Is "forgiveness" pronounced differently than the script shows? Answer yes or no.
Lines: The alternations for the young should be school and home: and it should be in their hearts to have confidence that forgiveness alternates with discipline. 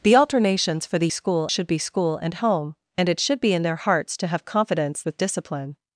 yes